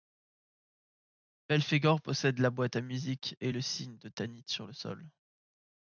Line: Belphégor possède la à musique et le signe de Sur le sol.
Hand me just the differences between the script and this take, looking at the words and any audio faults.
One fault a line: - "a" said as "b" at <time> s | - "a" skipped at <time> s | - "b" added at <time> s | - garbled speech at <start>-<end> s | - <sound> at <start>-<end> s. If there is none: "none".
- "boîte" added at 2.5 s
- "Tanit" added at 4.1 s